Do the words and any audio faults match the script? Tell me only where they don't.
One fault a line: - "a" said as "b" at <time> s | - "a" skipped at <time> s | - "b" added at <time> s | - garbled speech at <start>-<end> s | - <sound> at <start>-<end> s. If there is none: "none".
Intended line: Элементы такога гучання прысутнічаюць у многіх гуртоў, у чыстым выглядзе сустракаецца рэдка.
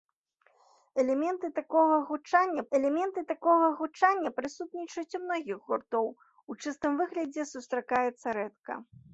- "элементы такога гучання" added at 2.8 s